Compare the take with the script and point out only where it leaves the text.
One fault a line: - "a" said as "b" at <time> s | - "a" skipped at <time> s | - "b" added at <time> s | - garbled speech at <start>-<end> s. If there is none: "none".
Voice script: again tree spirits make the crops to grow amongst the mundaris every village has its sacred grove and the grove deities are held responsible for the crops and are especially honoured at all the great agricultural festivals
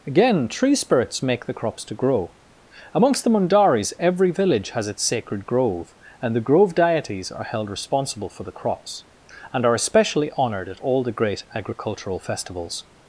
none